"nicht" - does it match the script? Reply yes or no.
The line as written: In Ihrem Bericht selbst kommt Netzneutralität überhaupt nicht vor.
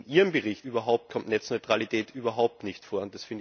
yes